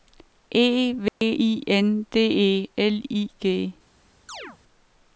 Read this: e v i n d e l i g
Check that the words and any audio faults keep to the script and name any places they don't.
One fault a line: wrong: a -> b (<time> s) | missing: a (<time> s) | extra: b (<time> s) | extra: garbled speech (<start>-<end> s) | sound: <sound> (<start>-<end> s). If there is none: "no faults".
sound: dropout (1.1-1.2 s)
sound: chirp (4.3-4.6 s)